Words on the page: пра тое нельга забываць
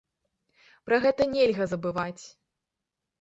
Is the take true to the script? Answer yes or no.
no